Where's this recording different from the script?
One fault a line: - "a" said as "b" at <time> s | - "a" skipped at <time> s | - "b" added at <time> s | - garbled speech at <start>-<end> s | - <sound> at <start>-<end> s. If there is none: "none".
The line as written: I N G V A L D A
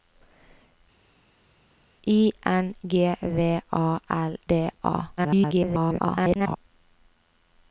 - garbled speech at 5.2-6.6 s